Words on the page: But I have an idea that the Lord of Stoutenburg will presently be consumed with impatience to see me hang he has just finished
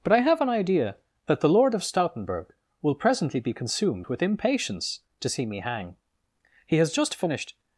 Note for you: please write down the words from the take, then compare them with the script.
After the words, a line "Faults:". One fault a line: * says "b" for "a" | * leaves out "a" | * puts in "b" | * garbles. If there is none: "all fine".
But I have an idea that the Lord of Stoutenburg will presently be consumed with impatience to see me hang he has just finished
Faults:
all fine